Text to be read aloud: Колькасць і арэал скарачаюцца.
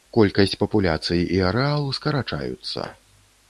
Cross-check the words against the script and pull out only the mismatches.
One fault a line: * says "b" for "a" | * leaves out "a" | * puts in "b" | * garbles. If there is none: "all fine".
* puts in "папуляцый"